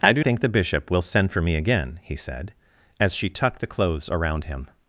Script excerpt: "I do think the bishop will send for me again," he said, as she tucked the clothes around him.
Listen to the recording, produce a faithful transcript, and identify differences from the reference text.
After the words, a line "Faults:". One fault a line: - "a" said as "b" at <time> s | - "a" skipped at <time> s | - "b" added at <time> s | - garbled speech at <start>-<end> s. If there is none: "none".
"I do think the bishop will send for me again," he said, as she tucked the clothes around him.
Faults:
none